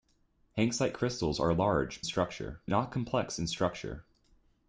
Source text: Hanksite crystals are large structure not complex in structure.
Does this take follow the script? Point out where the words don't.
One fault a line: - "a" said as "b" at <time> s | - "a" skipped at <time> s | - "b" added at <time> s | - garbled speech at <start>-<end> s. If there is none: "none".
none